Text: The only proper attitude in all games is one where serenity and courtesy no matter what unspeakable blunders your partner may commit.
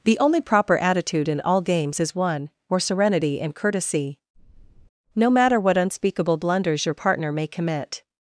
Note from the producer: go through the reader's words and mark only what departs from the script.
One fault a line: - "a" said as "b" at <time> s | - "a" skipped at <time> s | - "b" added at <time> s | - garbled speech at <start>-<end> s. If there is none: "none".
none